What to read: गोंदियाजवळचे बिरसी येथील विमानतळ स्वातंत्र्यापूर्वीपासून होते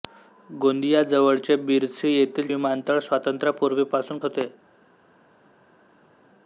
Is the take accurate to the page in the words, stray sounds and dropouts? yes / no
yes